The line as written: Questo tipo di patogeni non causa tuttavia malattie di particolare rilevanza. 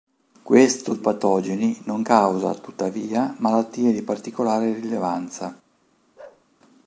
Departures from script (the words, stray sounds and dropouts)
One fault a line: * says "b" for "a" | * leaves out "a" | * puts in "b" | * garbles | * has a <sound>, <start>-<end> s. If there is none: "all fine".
* leaves out "tipo di"
* has a bark, 6.2-6.5 s